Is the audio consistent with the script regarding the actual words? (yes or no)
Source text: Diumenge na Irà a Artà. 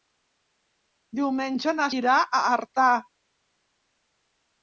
yes